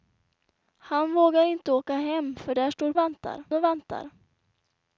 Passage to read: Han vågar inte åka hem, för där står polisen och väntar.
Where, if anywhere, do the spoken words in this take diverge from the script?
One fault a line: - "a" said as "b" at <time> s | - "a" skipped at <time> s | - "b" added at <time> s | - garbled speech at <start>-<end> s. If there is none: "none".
- "polisen" said as "väntar" at 3.0 s